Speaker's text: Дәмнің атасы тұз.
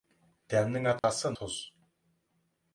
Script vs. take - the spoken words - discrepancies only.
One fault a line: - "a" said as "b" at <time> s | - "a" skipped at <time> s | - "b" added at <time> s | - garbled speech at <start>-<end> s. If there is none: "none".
none